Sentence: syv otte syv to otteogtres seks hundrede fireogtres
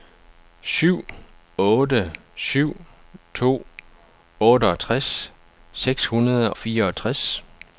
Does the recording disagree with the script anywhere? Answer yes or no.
no